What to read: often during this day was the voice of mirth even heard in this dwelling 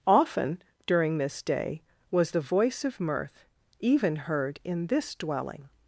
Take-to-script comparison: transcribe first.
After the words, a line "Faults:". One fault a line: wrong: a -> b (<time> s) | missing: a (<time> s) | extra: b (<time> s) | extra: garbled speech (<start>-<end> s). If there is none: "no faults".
often during this day was the voice of mirth even heard in this dwelling
Faults:
no faults